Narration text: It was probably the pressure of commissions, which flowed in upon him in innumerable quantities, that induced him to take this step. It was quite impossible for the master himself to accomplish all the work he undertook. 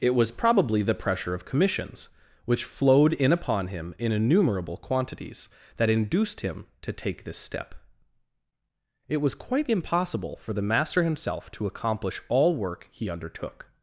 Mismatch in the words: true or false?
true